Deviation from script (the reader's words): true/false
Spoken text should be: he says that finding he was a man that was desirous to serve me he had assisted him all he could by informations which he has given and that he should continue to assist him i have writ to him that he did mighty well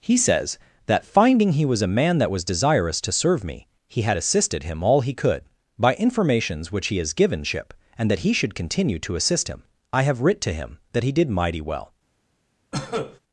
true